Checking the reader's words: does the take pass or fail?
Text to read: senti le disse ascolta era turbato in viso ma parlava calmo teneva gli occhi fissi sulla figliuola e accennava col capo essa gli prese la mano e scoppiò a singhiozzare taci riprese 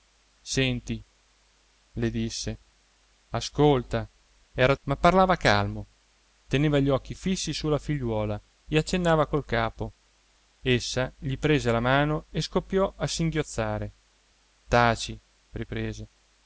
fail